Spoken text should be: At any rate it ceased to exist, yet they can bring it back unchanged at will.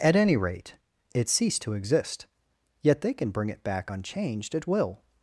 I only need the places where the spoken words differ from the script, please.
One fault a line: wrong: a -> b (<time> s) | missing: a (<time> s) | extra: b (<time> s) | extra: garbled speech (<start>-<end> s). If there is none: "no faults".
no faults